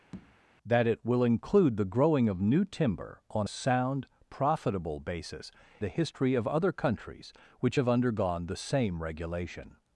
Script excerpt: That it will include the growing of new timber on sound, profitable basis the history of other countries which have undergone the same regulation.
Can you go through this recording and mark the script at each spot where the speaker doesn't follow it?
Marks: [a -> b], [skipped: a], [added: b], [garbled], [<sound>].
[tap] That it will include the growing of new timber on sound, profitable basis the history of other countries which have undergone the same regulation.